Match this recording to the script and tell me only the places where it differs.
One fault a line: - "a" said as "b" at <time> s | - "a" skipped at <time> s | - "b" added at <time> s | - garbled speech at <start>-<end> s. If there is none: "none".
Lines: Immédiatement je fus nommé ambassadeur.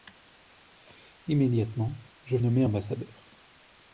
- "fus" skipped at 2.4 s